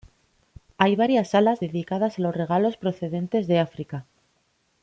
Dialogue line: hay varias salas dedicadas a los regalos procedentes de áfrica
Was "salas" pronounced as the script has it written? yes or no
yes